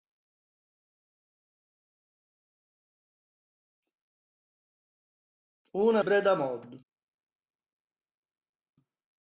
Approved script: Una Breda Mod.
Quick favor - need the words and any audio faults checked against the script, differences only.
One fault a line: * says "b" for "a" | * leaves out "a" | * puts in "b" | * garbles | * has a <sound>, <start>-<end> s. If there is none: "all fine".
all fine